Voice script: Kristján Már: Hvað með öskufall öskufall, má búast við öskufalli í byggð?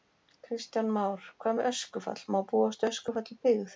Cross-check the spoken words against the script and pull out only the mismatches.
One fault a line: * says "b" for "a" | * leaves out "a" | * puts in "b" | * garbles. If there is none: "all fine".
* leaves out "öskufall"